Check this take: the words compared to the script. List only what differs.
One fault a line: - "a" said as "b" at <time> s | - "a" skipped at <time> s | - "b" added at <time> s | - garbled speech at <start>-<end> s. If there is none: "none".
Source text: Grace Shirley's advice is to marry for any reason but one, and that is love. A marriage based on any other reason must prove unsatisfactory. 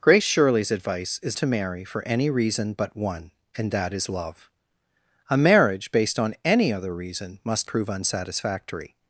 none